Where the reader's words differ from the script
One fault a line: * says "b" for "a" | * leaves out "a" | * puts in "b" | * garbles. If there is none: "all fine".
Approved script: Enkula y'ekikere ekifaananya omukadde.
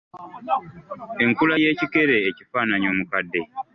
all fine